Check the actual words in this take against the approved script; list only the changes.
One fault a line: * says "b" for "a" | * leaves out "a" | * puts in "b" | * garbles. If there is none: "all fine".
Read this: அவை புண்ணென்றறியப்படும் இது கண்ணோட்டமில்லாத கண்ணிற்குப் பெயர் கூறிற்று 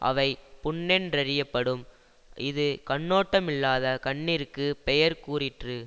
all fine